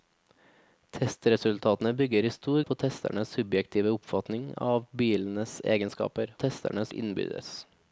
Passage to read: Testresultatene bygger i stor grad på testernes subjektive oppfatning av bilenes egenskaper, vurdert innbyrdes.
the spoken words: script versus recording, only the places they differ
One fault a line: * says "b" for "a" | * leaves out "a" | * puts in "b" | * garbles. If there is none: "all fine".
* leaves out "grad"
* says "testernes" for "vurdert"